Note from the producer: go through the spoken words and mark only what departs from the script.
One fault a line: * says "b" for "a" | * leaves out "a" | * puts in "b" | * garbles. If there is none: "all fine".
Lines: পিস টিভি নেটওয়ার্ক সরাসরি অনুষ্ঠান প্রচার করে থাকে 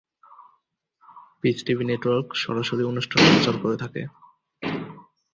all fine